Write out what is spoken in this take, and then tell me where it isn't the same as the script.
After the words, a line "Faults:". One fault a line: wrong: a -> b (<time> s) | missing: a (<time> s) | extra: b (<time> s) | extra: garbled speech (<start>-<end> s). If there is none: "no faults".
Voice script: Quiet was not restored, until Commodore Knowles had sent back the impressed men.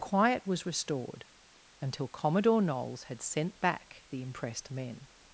Quiet was restored, until Commodore Knowles had sent back the impressed men.
Faults:
missing: not (0.7 s)